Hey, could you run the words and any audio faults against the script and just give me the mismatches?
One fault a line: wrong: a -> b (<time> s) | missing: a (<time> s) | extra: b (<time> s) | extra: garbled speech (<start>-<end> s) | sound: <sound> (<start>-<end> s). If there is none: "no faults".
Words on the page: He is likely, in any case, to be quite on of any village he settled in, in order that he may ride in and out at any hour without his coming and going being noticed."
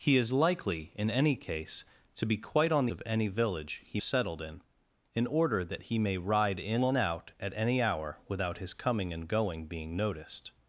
no faults